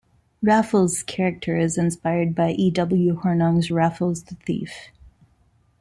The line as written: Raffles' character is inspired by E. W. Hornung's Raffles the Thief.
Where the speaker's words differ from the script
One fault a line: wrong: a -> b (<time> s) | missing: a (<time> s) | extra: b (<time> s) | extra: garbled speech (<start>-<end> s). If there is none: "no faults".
no faults